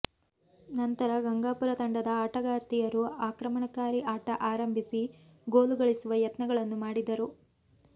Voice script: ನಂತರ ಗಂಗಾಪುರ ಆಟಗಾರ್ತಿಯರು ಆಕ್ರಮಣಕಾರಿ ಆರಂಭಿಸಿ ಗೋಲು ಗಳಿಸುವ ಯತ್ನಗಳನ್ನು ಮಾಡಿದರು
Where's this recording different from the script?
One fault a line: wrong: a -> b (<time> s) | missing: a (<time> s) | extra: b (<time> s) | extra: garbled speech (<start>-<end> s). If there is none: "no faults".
extra: ತಂಡದ (1.8 s)
extra: ಆಟ (4.1 s)